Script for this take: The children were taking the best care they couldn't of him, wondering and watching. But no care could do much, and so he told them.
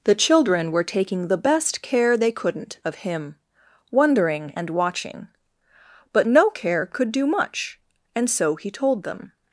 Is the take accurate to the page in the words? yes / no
yes